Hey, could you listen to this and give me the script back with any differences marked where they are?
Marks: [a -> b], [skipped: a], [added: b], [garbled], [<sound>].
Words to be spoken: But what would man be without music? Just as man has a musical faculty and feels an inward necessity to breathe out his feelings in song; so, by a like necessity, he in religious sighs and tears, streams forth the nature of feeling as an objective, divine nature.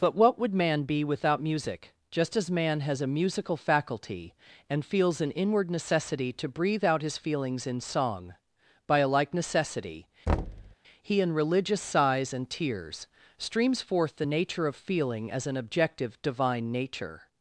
But what would man be without music? Just as man has a musical faculty and feels an inward necessity to breathe out his feelings in song; [skipped: so,] by a like necessity, [thud] he in religious sighs and tears, streams forth the nature of feeling as an objective, divine nature.